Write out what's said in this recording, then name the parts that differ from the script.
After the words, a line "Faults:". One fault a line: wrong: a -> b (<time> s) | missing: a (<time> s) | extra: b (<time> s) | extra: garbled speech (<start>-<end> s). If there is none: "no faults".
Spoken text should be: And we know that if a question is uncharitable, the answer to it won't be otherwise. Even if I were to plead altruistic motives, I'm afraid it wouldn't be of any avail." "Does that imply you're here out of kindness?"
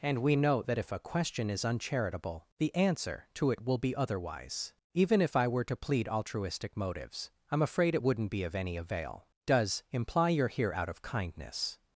And we know that if a question is uncharitable, the answer to it will be otherwise. Even if I were to plead altruistic motives, I'm afraid it wouldn't be of any avail." "Does imply you're here out of kindness?"
Faults:
wrong: won't -> will (3.6 s)
missing: that (9.8 s)